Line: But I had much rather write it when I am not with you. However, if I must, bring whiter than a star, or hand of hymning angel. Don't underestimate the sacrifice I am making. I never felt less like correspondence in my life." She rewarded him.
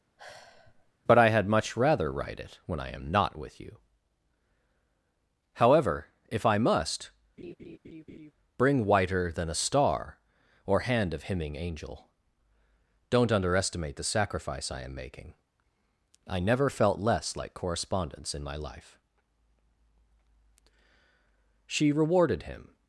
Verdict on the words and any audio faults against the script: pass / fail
fail